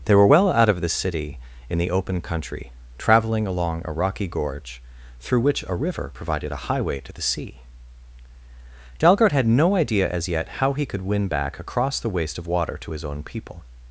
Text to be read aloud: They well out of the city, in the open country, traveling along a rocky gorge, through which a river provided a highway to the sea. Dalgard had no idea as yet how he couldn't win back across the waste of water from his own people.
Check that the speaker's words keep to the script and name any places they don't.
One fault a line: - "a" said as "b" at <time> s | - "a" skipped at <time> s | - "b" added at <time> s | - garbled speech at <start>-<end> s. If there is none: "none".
- "were" added at 0.1 s
- "couldn't" said as "could" at 10.9 s
- "from" said as "to" at 12.8 s